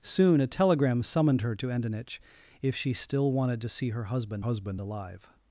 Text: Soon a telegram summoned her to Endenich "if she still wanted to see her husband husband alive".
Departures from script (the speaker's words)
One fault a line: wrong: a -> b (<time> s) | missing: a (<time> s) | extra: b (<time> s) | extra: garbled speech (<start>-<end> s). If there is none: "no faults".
no faults